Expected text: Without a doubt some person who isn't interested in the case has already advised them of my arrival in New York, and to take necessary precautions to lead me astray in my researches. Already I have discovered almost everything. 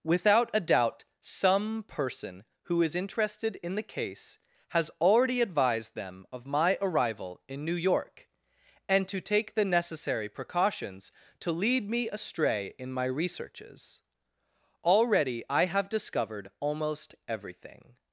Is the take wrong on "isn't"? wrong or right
wrong